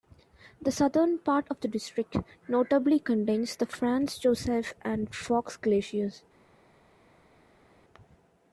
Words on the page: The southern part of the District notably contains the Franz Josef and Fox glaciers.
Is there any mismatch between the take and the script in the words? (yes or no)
no